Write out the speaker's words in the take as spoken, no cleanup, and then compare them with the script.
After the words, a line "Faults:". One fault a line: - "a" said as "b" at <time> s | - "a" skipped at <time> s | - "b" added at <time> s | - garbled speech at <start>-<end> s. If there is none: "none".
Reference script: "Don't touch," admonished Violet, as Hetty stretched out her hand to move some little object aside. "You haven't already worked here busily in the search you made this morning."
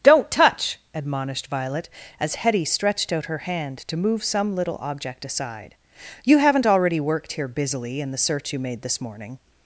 "Don't touch," admonished Violet, as Hetty stretched out her hand to move some little object aside. "You haven't already worked here busily in the search you made this morning."
Faults:
none